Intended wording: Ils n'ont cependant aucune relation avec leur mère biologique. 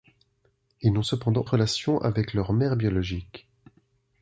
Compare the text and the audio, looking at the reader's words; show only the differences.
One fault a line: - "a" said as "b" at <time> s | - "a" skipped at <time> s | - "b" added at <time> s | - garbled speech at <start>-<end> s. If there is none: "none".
- "aucune" skipped at 1.4 s